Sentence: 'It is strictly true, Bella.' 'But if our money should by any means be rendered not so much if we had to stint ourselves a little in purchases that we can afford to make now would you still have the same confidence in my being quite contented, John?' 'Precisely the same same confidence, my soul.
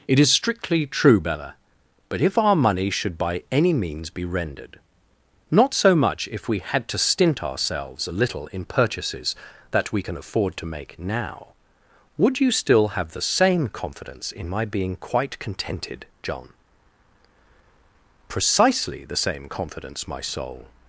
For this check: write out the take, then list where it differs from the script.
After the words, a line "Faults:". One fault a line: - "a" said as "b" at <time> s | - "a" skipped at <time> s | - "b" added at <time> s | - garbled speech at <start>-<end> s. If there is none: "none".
'It is strictly true, Bella.' 'But if our money should by any means be rendered not so much if we had to stint ourselves a little in purchases that we can afford to make now would you still have the same confidence in my being quite contented, John?' 'Precisely the same confidence, my soul.
Faults:
- "same" skipped at 19.5 s